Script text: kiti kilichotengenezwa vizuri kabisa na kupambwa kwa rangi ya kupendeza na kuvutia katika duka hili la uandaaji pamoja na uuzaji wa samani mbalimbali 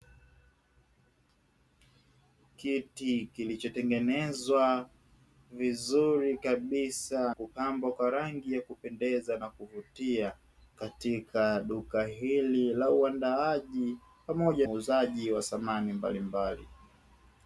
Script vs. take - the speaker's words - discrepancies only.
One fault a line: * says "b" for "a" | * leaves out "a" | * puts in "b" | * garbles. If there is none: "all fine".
* leaves out "na"
* leaves out "na"